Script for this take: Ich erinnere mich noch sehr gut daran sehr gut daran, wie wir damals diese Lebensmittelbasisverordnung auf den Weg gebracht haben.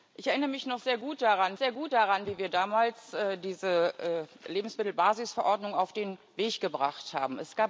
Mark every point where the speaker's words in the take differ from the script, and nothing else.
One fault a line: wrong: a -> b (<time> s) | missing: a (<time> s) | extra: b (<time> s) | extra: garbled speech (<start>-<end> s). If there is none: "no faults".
no faults